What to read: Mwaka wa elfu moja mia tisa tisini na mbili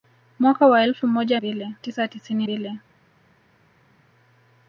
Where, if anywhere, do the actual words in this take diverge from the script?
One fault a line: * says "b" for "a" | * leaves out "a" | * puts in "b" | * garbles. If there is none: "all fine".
* says "mbili" for "mia"
* leaves out "na"